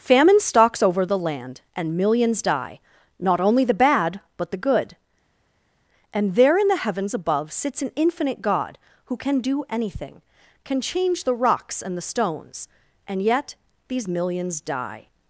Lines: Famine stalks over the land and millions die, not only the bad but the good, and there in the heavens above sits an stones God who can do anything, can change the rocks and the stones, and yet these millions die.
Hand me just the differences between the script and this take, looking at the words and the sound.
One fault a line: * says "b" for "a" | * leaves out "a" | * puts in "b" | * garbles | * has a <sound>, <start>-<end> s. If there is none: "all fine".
* says "infinite" for "stones"